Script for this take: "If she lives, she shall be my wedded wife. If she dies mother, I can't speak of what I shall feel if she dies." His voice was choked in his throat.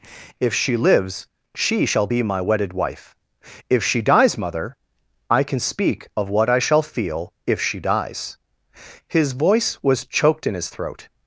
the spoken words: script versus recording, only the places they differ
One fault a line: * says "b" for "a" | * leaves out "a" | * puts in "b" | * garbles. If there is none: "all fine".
* says "can" for "can't"